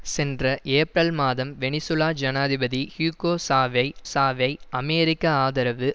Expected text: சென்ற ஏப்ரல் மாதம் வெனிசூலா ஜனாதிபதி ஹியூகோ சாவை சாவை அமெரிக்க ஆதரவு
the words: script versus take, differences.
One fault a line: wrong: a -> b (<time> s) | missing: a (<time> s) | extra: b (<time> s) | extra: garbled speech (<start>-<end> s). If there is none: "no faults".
no faults